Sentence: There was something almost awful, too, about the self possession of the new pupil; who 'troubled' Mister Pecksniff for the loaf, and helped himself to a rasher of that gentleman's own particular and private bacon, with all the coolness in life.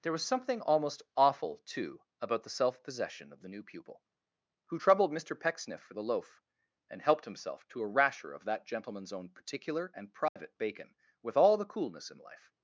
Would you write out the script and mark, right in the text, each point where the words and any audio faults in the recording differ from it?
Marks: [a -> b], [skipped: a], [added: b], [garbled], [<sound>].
There was something almost awful, too, about the self possession of the new pupil; who 'troubled' Mister Pecksniff for the loaf, and helped himself to a rasher of that gentleman's own particular and private [dropout] bacon, with all the coolness in life.